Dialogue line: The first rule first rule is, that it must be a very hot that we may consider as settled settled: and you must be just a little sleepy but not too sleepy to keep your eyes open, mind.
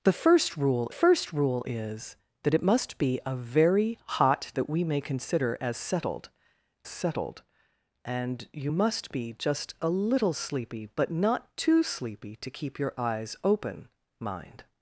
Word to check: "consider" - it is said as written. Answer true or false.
true